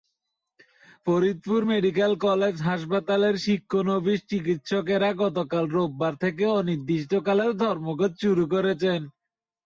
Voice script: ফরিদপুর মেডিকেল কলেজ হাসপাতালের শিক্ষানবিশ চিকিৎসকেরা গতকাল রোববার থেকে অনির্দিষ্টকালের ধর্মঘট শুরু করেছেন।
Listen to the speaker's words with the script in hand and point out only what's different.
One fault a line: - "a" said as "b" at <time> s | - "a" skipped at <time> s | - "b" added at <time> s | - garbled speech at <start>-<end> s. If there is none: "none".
none